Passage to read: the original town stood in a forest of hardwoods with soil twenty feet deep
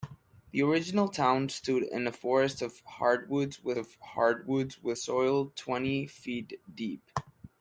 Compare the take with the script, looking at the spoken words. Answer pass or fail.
fail